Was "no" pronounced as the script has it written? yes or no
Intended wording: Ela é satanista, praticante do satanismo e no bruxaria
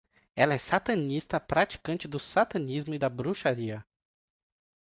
no